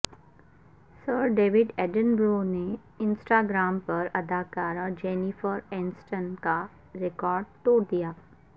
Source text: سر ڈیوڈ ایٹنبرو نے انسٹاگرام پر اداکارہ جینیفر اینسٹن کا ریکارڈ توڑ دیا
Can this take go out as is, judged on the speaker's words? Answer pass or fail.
pass